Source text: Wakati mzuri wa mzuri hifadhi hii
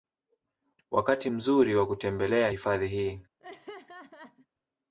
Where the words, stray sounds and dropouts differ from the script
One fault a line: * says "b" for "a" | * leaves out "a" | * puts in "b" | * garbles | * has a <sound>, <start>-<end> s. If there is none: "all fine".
* says "kutembelea" for "mzuri"
* has a laugh, 3.4-4.5 s